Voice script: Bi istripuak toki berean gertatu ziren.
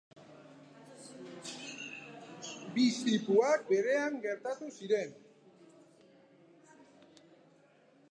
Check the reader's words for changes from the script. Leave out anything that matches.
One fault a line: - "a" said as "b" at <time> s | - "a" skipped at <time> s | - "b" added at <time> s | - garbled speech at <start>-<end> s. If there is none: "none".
- "toki" skipped at 3.7 s